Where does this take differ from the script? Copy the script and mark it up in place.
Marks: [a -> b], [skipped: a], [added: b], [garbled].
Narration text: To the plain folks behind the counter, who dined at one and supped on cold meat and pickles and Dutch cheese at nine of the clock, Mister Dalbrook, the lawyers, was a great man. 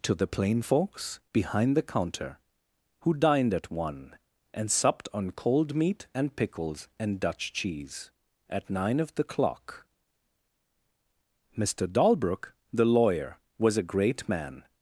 To the plain folks behind the counter, who dined at one and supped on cold meat and pickles and Dutch cheese at nine of the clock, Mister Dalbrook, the [lawyers, -> lawyer] was a great man.